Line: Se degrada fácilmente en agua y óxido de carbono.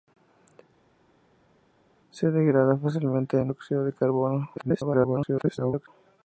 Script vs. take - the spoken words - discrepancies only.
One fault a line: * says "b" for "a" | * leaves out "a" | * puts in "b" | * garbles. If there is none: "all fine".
* leaves out "agua y"
* garbles